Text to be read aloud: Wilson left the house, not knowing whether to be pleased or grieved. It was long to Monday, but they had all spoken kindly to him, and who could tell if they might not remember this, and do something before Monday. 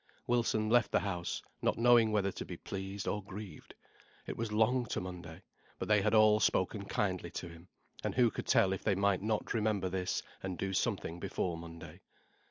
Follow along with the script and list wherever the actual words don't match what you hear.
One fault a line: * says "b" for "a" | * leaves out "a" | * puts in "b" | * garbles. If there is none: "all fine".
all fine